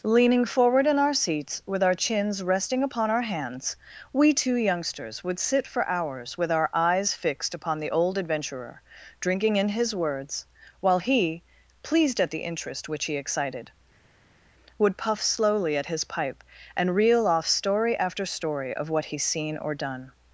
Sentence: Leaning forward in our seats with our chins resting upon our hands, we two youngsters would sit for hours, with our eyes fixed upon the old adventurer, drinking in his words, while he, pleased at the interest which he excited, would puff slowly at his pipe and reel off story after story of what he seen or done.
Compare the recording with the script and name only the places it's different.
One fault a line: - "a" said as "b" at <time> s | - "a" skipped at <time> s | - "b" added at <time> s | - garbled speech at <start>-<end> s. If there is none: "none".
none